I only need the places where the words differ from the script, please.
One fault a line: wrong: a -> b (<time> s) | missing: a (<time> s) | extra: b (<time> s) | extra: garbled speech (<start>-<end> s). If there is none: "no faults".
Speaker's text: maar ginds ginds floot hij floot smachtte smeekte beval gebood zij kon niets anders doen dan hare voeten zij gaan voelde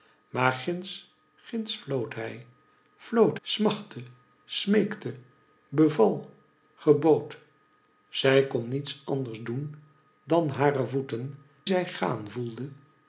no faults